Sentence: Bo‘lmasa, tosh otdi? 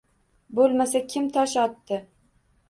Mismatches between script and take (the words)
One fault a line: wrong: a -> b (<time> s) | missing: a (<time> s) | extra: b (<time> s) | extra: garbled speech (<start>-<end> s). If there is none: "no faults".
extra: kim (1.1 s)